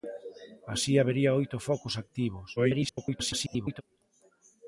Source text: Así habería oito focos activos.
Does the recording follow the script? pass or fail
fail